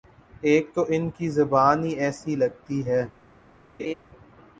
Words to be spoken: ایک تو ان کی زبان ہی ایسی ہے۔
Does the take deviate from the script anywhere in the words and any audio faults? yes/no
yes